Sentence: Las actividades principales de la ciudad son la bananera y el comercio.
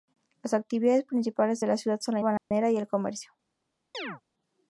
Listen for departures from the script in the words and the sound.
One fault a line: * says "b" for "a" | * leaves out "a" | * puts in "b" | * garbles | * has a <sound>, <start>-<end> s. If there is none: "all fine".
* has a dropout, 2.4-2.5 s
* has a chirp, 3.9-4.2 s